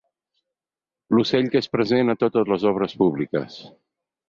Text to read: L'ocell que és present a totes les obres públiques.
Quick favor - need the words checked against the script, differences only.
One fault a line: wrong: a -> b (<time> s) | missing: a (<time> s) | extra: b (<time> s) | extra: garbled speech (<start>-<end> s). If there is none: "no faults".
no faults